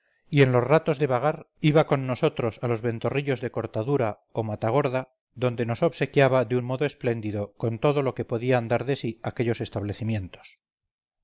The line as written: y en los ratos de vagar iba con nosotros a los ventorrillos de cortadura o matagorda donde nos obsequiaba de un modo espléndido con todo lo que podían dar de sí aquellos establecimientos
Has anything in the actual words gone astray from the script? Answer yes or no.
no